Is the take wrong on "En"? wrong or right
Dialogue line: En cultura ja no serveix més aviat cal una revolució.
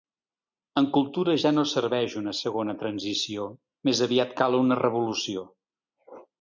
right